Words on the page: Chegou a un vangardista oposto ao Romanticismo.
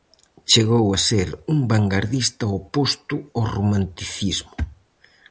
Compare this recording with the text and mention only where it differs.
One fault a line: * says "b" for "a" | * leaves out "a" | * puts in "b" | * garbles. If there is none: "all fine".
* puts in "ser"